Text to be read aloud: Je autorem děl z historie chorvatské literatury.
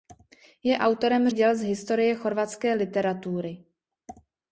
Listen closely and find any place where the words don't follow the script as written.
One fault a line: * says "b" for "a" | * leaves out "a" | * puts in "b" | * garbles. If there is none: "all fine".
all fine